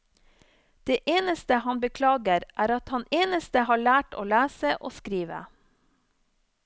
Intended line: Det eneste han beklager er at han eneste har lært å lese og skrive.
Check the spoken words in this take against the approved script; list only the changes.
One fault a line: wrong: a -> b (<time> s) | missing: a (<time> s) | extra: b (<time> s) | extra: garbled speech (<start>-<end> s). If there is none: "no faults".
no faults